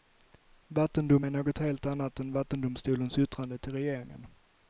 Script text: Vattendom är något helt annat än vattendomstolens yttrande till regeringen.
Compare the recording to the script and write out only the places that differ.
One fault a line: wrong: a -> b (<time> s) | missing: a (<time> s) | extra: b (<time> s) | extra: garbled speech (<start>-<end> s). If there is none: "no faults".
no faults